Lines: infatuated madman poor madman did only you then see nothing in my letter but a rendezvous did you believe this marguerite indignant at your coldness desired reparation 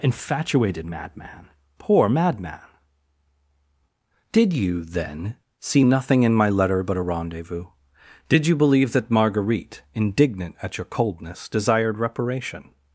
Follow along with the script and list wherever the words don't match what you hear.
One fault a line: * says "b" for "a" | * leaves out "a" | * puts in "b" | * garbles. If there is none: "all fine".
* leaves out "only"
* says "that" for "this"